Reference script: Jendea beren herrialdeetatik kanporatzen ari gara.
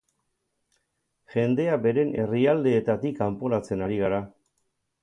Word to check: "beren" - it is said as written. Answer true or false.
true